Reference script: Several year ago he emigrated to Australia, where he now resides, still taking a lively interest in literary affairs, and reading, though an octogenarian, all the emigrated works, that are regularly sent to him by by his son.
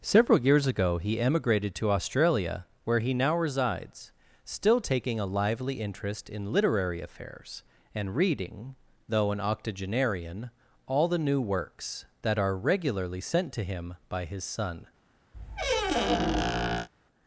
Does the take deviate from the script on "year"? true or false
true